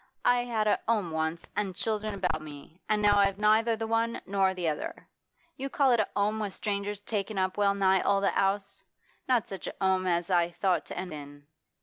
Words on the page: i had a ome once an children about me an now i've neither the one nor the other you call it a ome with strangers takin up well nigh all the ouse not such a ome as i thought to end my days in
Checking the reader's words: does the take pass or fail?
fail